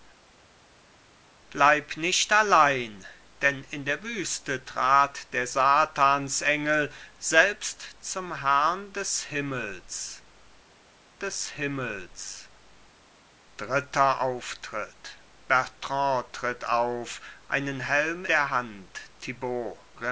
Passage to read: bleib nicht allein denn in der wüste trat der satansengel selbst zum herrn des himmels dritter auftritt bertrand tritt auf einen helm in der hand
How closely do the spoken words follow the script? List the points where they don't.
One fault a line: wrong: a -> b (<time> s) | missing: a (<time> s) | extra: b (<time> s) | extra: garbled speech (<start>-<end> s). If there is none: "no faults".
extra: des himmels (11.2 s)
missing: in (18.2 s)